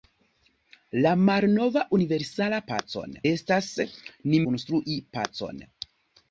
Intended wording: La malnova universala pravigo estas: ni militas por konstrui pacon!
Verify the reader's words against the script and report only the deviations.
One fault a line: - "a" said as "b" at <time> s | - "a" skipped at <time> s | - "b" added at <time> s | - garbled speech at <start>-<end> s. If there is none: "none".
- "pravigo" said as "pacon" at 2.7 s
- "militas por" skipped at 4.4 s